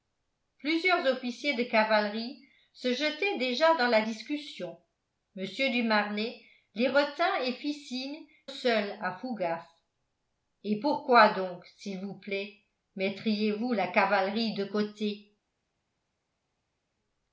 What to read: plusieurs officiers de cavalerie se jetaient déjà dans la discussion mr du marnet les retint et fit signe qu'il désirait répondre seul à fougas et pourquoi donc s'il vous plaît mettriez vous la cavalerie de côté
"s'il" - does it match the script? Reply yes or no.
yes